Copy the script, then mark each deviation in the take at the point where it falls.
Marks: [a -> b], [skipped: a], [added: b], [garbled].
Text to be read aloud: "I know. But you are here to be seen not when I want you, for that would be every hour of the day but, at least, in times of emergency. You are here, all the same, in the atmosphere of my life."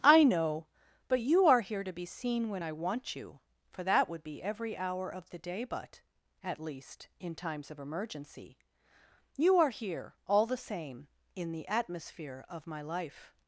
"I know. But you are here to be seen [skipped: not] when I want you, for that would be every hour of the day but, at least, in times of emergency. You are here, all the same, in the atmosphere of my life."